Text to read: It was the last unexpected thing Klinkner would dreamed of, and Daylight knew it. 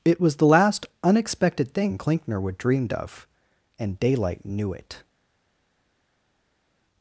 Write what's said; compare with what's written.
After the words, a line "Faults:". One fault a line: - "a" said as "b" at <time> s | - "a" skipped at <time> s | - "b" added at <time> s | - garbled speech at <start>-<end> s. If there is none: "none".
It was the last unexpected thing Klinkner would dreamed of, and Daylight knew it.
Faults:
none